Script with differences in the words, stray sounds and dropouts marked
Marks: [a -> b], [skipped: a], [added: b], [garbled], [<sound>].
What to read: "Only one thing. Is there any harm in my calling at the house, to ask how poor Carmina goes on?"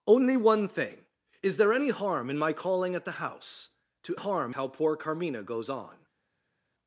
"Only one thing. Is there any harm in my calling at the house, to [ask -> harm] how poor Carmina goes on?"